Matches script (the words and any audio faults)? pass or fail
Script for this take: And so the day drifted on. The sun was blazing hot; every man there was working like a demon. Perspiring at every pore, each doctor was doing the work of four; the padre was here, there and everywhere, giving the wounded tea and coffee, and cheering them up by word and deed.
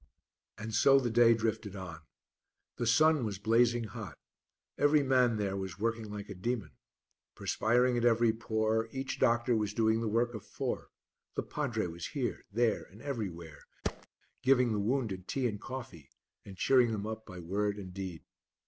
fail